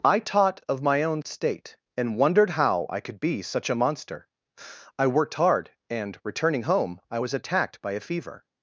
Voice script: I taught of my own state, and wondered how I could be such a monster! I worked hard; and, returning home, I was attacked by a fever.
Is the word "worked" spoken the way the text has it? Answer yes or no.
yes